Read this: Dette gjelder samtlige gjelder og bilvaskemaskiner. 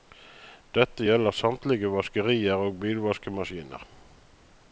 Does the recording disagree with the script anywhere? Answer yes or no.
yes